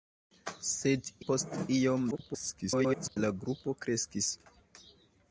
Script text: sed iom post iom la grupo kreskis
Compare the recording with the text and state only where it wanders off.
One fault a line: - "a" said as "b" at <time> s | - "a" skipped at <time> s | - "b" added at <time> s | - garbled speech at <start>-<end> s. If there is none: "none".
- "iom" skipped at 1.1 s
- garbled speech at 2.1-3.2 s